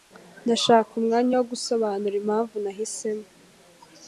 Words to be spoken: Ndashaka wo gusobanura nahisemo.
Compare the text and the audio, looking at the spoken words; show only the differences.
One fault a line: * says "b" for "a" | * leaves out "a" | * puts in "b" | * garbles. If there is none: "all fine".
* puts in "umwanya"
* puts in "impamvu"